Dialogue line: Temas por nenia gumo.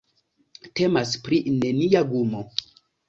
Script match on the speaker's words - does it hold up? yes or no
no